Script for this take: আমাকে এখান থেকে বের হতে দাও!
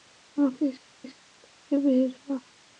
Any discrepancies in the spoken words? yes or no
yes